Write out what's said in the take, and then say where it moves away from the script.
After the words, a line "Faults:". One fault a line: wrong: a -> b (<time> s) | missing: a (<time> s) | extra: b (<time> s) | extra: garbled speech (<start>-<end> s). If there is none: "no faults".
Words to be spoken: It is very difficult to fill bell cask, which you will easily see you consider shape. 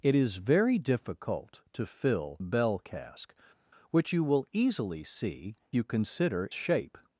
It is very difficult to fill bell cask, which you will easily see you consider shape.
Faults:
no faults